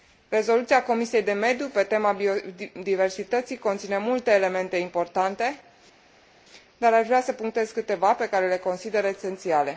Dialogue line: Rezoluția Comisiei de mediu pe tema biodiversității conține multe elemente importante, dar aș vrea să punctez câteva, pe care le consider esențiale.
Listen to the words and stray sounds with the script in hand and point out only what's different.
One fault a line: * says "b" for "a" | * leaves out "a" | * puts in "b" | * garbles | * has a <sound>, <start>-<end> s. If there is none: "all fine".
all fine